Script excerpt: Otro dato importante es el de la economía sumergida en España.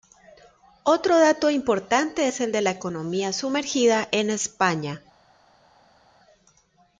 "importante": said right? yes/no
yes